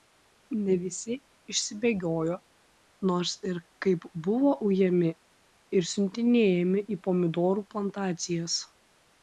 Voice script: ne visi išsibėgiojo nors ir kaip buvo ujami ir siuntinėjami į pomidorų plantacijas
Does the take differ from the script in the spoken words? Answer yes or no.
no